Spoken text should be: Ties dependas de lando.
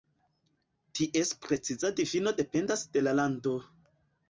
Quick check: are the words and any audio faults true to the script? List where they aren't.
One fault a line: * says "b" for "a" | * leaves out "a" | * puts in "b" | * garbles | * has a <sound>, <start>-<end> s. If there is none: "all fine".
* puts in "preciza difino"
* puts in "la"